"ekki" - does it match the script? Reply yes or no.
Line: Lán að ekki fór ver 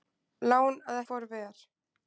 no